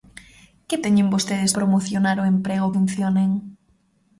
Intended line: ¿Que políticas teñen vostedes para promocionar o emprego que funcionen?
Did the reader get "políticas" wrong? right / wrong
wrong